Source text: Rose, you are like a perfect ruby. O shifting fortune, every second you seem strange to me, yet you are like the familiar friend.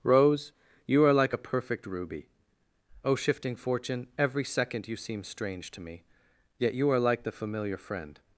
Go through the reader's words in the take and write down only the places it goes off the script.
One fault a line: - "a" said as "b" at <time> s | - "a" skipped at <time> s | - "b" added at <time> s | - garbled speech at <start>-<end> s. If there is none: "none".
none